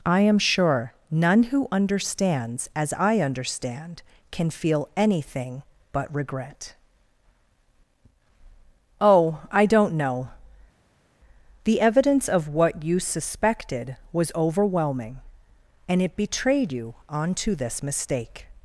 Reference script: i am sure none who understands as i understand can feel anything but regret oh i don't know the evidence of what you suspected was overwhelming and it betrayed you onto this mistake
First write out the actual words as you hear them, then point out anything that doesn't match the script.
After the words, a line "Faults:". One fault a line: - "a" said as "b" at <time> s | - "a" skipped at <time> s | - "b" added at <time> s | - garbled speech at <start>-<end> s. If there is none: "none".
i am sure none who understands as i understand can feel anything but regret oh i don't know the evidence of what you suspected was overwhelming and it betrayed you onto this mistake
Faults:
none